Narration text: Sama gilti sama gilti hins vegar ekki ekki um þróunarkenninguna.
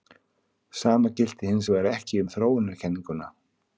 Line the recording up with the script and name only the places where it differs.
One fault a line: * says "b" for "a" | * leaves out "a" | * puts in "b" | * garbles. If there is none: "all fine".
* leaves out "sama gilti"
* leaves out "ekki"